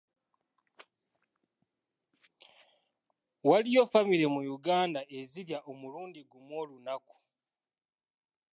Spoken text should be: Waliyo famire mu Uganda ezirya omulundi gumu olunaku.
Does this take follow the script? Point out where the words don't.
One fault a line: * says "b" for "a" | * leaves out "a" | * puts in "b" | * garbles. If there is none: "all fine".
all fine